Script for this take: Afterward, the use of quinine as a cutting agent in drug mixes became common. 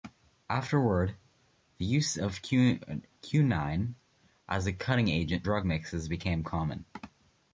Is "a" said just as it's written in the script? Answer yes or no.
yes